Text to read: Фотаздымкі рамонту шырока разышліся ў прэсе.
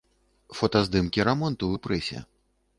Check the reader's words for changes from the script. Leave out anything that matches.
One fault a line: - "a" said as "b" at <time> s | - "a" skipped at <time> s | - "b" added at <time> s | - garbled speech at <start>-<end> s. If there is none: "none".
- "шырока разышліся" skipped at 1.7 s